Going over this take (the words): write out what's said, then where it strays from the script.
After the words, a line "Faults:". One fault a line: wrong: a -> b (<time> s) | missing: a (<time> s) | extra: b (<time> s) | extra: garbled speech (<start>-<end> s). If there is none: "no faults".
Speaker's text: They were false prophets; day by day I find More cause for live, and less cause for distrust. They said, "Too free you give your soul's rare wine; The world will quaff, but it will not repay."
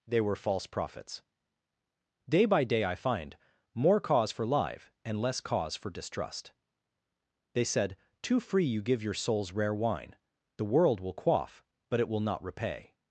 They were false prophets; day by day I find More cause for live, and less cause for distrust. They said, "Too free you give your soul's rare wine; The world will quaff, but it will not repay."
Faults:
no faults